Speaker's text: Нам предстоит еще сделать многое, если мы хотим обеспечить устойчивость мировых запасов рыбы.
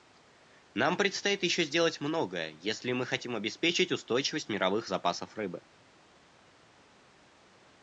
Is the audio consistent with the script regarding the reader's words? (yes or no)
yes